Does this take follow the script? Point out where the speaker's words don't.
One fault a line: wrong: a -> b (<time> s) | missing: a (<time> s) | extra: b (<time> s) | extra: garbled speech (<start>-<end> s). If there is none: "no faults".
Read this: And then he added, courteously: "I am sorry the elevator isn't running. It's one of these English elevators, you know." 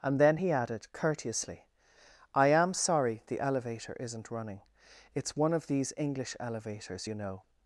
no faults